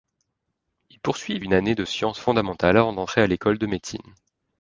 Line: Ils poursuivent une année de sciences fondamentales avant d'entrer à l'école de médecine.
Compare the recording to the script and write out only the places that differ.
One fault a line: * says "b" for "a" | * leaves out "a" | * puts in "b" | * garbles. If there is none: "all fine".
all fine